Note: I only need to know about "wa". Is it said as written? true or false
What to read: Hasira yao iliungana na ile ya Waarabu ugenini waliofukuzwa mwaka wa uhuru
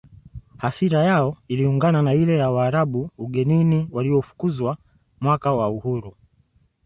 true